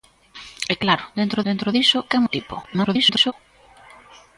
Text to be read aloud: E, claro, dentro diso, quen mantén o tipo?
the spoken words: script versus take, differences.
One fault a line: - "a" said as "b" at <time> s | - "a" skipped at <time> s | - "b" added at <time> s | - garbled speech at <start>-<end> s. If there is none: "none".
- "dentro" added at 1.5 s
- "mantén" skipped at 2.2 s
- garbled speech at 2.6-3.3 s